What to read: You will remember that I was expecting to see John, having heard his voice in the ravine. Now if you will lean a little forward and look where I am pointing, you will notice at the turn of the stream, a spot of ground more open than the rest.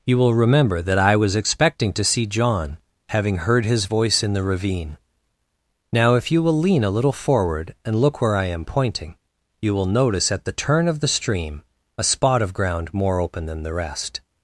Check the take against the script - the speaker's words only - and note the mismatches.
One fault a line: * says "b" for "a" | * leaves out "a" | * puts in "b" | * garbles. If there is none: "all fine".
all fine